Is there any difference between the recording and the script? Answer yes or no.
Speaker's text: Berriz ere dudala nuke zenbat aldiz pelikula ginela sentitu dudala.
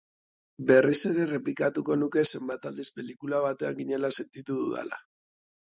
yes